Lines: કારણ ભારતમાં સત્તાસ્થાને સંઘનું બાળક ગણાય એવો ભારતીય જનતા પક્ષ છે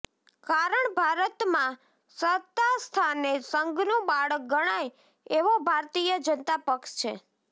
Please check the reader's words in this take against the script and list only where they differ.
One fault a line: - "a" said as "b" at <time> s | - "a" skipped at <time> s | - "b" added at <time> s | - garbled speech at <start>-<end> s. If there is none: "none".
none